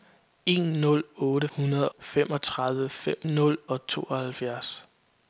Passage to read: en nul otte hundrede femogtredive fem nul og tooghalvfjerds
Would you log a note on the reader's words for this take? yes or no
no